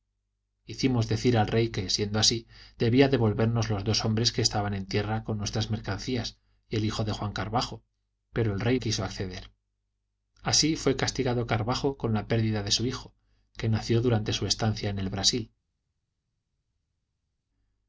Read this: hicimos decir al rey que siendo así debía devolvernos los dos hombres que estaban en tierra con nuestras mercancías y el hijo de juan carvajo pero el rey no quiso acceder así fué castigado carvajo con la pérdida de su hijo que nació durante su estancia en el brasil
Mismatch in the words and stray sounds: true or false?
true